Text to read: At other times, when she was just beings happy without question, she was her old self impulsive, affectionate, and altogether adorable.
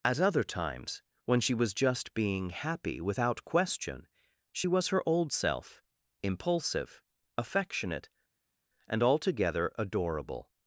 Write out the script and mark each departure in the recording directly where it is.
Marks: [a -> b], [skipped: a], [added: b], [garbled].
At other times, when she was just [beings -> being] happy without question, she was her old self impulsive, affectionate, and altogether adorable.